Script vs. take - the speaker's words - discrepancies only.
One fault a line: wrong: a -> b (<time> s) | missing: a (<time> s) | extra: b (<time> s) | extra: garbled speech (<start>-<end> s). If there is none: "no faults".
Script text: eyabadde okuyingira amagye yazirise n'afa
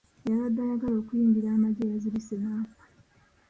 extra: ayagala (0.7 s)